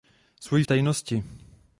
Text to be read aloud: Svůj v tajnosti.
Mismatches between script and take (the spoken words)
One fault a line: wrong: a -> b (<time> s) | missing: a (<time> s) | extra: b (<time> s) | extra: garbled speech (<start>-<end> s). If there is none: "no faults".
no faults